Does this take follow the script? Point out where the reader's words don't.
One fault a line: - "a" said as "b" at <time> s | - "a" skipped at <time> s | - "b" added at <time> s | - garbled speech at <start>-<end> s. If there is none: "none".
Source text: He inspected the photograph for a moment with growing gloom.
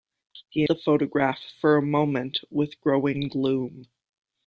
- "inspected" skipped at 0.7 s